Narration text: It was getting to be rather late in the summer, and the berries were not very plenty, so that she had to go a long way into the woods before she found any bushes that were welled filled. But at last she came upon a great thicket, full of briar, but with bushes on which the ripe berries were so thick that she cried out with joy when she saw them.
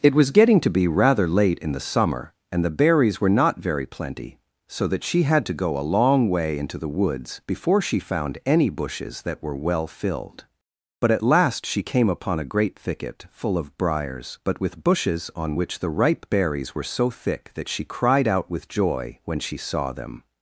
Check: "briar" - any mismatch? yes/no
yes